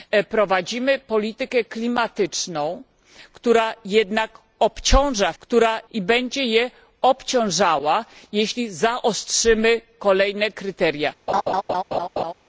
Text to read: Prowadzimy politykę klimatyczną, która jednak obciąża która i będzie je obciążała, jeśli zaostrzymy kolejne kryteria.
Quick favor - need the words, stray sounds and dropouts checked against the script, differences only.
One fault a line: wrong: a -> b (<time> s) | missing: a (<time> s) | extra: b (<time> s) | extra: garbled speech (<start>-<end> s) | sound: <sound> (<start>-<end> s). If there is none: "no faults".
sound: laugh (11.3-12.3 s)